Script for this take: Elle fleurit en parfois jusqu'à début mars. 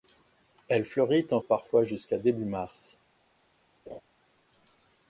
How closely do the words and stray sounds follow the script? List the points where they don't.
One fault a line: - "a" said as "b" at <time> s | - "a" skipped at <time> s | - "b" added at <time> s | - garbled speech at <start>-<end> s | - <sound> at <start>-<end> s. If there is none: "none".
- laugh at 3.9-4.0 s